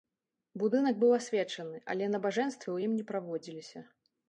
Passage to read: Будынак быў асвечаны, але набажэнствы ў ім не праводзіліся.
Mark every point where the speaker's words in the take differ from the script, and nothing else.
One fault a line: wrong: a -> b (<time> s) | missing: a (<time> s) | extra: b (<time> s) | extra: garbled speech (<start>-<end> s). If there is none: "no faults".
no faults